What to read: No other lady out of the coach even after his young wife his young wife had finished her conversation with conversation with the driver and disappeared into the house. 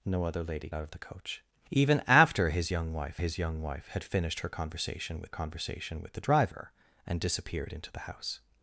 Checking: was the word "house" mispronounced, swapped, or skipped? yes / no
no